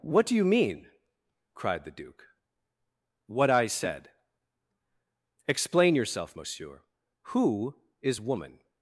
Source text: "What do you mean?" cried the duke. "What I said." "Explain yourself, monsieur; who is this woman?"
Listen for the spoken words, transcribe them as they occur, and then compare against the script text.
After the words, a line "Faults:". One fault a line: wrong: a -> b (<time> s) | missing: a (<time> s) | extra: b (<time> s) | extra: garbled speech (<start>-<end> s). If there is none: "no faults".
"What do you mean?" cried the duke. "What I said." "Explain yourself, monsieur; who is woman?"
Faults:
missing: this (8.2 s)